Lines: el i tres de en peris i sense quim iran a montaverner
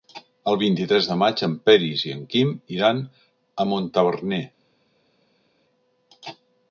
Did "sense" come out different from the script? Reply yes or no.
yes